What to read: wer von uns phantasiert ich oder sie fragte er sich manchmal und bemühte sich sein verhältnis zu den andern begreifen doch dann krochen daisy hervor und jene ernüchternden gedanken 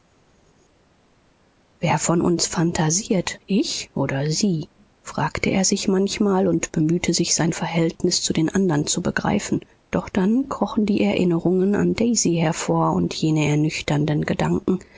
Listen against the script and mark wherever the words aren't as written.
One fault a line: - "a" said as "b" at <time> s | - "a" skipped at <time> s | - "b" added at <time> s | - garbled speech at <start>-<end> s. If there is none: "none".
- "zu" added at 8.9 s
- "die erinnerungen an" added at 10.8 s